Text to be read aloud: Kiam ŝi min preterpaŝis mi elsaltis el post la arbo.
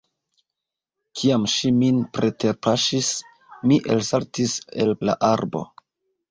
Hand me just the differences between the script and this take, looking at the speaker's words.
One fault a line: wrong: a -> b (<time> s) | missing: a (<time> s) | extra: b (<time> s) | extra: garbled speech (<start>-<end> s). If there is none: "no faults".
missing: post (5.0 s)